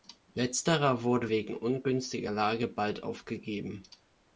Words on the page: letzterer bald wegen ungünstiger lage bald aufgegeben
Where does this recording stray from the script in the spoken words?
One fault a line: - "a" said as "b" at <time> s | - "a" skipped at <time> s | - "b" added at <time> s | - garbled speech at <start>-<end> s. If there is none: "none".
- "bald" said as "wurde" at 1.0 s